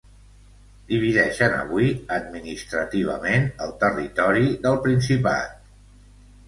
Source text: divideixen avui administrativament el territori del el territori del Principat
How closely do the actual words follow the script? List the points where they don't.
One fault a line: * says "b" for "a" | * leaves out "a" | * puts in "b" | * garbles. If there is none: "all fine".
* leaves out "el territori del"